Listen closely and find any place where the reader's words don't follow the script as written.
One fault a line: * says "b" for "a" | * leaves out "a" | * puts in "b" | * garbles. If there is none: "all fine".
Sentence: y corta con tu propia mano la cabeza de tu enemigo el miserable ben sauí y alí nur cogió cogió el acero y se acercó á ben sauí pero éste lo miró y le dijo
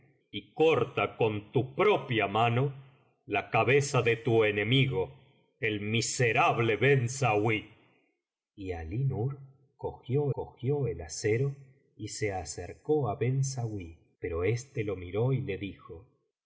all fine